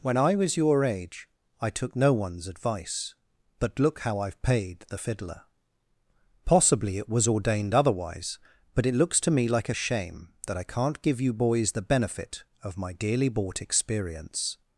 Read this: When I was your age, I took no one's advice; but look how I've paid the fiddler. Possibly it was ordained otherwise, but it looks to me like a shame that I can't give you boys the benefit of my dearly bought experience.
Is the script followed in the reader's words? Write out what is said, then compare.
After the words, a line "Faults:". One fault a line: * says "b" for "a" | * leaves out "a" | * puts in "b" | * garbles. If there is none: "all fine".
When I was your age, I took no one's advice; but look how I've paid the fiddler. Possibly it was ordained otherwise, but it looks to me like a shame that I can't give you boys the benefit of my dearly bought experience.
Faults:
all fine